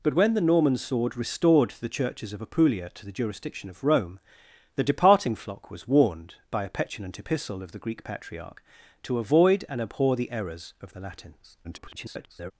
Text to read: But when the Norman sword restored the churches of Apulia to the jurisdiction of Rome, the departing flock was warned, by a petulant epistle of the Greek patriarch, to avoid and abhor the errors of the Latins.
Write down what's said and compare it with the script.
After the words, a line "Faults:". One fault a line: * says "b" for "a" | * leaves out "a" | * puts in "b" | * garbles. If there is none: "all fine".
But when the Norman sword restored the churches of Apulia to the jurisdiction of Rome, the departing flock was warned, by a petulant epistle of the Greek patriarch, to avoid and abhor the errors of the Latins. [garbled]
Faults:
* garbles